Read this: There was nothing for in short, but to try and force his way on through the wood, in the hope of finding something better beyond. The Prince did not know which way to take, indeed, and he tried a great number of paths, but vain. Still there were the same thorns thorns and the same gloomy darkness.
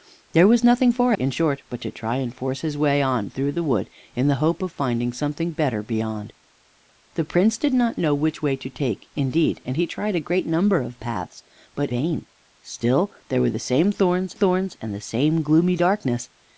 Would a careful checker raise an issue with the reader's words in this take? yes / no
no